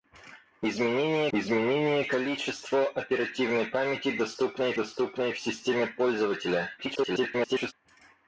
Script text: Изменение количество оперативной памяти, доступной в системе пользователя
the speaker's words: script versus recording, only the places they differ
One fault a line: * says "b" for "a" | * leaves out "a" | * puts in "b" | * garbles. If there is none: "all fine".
* puts in "изменение"
* puts in "доступной"
* garbles